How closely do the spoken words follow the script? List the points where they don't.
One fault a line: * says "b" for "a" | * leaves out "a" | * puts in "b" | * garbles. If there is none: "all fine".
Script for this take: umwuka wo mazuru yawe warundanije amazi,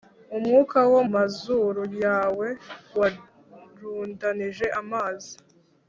all fine